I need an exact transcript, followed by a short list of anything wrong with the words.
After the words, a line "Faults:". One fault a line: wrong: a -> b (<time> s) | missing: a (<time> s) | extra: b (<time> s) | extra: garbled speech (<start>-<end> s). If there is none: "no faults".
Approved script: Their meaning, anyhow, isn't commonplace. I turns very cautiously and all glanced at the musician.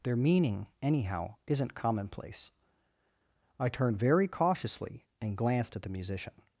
Their meaning, anyhow, isn't commonplace. I turned very cautiously and glanced at the musician.
Faults:
wrong: turns -> turned (3.7 s)
missing: all (5.4 s)